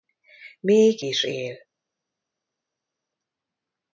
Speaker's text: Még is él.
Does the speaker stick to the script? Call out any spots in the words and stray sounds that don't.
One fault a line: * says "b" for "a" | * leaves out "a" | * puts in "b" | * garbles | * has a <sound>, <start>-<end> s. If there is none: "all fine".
all fine